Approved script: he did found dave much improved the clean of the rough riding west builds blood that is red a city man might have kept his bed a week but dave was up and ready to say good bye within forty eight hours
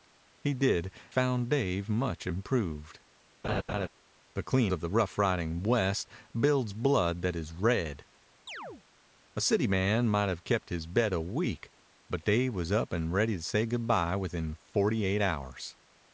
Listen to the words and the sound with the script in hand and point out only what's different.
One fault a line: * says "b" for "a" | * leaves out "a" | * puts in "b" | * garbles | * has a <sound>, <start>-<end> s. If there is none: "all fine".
* has a laugh, 3.4-3.9 s
* has a chirp, 8.5-8.8 s